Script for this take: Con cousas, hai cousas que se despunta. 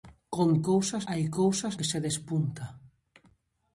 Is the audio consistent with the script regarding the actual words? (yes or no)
yes